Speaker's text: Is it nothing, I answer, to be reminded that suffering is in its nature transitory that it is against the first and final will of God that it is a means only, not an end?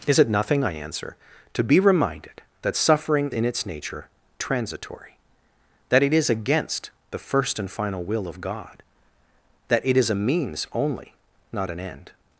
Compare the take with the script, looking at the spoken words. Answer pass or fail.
fail